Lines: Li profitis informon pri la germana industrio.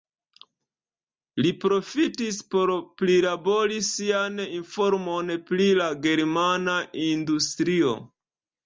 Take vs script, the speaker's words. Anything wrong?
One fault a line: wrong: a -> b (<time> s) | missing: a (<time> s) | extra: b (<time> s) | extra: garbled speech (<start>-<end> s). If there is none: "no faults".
extra: por prilabori sian (2.5 s)